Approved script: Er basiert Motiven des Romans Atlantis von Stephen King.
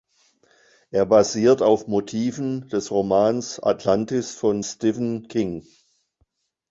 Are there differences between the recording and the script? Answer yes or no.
yes